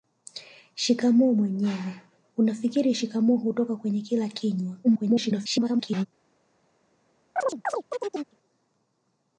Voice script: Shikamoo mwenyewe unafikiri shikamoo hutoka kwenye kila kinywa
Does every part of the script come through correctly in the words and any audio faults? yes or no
no